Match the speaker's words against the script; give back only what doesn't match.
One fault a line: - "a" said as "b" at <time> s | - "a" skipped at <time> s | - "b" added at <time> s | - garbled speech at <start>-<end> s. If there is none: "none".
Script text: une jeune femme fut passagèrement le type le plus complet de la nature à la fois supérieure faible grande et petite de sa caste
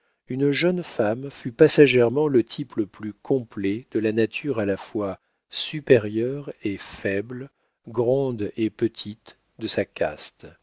- "et" added at 6.6 s